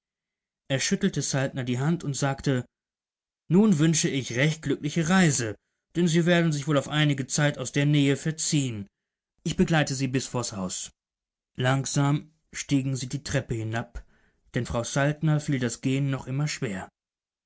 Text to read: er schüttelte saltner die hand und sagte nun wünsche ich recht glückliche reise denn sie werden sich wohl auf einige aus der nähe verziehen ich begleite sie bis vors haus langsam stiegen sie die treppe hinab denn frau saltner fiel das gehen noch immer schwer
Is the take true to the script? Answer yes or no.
no